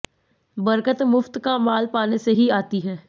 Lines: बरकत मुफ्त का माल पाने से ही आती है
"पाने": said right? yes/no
yes